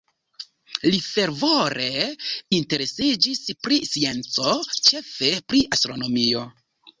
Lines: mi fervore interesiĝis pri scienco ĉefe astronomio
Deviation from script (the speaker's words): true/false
true